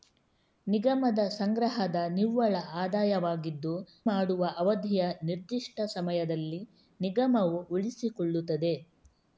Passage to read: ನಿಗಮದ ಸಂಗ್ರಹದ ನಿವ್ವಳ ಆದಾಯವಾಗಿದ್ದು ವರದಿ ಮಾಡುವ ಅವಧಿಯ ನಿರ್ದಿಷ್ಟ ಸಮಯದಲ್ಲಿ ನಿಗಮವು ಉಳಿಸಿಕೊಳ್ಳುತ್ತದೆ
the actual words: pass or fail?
fail